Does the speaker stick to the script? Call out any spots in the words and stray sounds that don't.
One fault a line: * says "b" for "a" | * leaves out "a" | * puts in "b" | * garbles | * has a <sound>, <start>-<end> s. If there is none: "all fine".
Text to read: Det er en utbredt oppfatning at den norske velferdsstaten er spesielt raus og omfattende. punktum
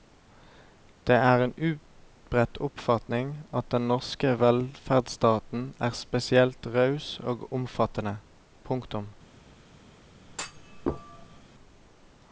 * has a thud, 10.3-11.5 s